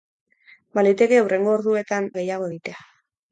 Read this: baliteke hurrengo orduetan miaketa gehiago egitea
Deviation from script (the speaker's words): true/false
true